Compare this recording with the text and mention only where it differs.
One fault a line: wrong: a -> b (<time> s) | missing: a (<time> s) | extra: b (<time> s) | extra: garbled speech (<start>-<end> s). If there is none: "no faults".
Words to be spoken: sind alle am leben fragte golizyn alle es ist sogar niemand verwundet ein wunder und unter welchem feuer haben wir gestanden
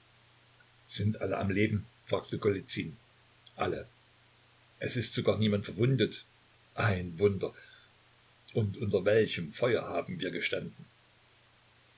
no faults